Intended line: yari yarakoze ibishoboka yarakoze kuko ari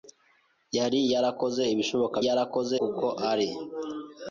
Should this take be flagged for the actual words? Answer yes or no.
no